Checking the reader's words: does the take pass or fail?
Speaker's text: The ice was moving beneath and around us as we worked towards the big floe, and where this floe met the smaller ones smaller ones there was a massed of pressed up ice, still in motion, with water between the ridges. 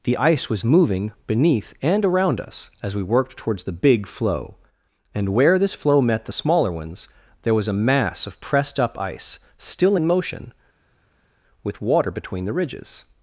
fail